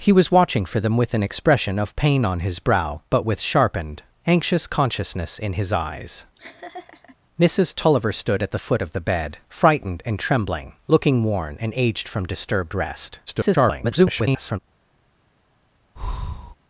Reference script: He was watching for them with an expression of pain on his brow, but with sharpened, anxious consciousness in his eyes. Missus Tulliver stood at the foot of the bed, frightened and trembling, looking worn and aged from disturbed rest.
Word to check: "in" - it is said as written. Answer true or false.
true